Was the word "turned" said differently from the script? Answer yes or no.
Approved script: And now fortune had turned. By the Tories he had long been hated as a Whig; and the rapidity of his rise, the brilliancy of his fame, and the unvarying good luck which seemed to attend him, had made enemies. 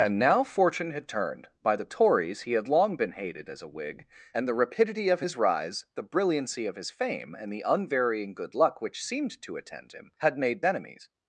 no